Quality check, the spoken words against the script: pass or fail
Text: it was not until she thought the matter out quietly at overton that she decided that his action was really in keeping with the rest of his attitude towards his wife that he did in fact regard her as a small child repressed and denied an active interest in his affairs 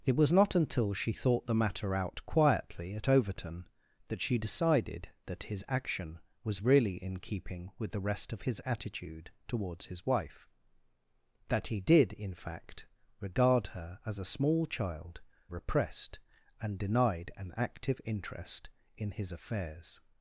pass